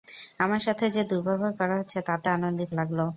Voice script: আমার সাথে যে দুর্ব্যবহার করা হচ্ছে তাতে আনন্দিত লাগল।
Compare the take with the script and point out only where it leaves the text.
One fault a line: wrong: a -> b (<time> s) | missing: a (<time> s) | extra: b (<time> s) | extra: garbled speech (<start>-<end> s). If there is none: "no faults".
no faults